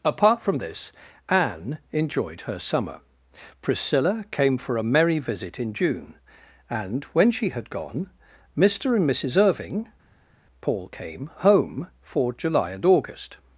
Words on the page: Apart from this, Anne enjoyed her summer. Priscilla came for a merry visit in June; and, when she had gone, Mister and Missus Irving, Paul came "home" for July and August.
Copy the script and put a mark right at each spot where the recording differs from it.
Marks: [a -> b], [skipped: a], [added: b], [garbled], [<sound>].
Apart from this, Anne enjoyed her summer. Priscilla came for a merry visit in June; and, when she had gone, Mister and Missus Irving, Paul came "home" for July and August.